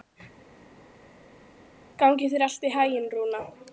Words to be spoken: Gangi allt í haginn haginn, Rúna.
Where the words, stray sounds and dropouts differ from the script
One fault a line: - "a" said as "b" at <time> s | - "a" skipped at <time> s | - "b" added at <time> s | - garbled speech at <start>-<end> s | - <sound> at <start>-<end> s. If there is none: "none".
- "þér" added at 2.3 s
- "haginn" skipped at 3.1 s